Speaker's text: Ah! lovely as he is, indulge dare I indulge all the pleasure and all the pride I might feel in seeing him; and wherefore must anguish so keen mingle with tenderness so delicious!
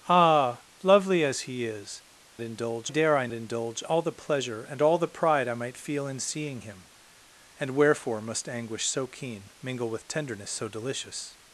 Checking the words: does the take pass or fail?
pass